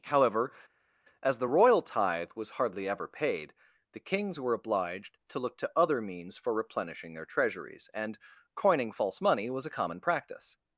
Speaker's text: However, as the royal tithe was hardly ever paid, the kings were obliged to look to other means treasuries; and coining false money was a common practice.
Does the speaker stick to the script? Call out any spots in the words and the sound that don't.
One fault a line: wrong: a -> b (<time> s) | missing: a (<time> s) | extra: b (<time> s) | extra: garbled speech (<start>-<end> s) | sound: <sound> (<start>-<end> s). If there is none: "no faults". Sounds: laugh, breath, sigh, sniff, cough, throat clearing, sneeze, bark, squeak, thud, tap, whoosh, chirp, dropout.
extra: for replenishing their (6.4 s)